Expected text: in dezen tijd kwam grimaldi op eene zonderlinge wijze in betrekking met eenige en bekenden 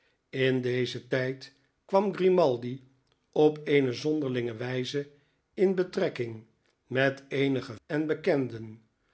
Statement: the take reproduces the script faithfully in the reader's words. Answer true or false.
true